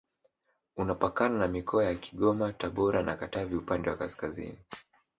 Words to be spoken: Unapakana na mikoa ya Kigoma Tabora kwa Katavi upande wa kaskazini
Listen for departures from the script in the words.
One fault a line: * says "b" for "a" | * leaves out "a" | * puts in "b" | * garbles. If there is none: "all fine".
* says "na" for "kwa"